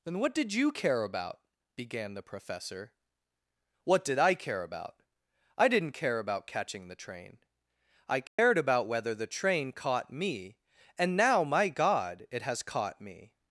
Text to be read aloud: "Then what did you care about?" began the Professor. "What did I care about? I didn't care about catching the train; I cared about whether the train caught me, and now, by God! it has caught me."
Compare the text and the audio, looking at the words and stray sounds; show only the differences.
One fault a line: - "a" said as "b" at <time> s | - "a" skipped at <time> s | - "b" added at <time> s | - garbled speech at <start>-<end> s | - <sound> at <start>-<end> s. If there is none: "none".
- dropout at 8.3-8.4 s
- "by" said as "my" at 11.4 s